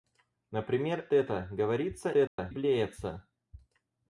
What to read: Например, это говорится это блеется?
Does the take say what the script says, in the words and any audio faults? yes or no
no